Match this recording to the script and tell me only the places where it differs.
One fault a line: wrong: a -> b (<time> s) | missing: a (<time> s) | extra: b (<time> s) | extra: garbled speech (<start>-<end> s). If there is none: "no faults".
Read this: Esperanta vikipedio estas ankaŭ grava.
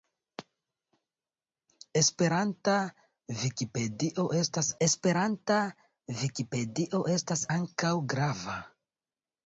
extra: esperanta vikipedio estas (4.8 s)